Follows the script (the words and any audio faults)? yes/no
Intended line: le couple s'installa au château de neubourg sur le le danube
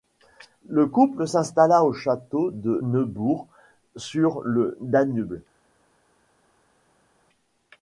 no